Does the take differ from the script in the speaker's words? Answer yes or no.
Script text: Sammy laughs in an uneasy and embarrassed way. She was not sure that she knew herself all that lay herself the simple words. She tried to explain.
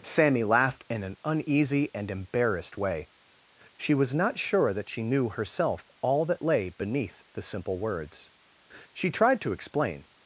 yes